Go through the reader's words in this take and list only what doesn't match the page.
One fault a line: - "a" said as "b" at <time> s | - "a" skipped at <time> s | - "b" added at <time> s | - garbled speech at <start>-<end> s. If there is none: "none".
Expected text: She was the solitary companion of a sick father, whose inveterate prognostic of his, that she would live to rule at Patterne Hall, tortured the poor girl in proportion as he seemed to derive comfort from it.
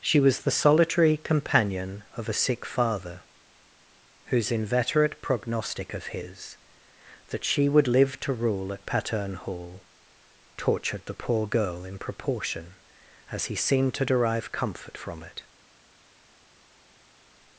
none